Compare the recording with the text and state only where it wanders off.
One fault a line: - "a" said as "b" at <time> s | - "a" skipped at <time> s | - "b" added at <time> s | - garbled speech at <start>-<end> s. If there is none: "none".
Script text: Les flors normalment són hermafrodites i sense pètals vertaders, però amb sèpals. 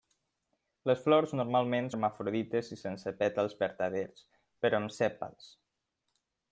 - "són" skipped at 1.9 s